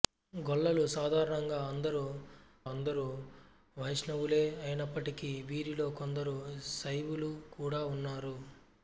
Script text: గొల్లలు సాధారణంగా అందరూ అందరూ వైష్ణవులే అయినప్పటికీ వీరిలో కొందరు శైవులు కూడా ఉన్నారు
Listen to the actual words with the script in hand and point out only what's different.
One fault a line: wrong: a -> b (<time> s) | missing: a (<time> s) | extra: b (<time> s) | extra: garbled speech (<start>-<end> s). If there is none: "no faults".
no faults